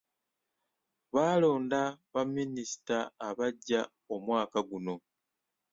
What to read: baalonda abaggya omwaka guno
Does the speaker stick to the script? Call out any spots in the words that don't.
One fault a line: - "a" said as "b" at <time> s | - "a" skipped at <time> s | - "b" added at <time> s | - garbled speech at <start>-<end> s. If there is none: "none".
- "baminisita" added at 2.1 s